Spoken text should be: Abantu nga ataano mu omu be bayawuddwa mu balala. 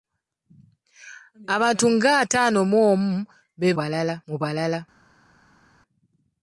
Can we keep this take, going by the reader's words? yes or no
no